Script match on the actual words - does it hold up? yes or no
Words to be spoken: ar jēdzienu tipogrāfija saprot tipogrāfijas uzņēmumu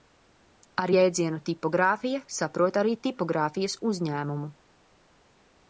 no